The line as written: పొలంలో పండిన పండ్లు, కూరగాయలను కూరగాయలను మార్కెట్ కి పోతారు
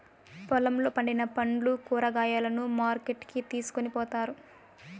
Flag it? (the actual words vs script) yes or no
yes